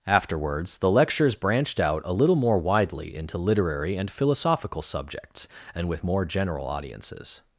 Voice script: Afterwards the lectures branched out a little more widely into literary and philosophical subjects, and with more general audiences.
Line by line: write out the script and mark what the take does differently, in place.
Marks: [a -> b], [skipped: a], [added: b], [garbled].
Afterwards the lectures branched out a little more widely into literary and philosophical subjects, and with more general audiences.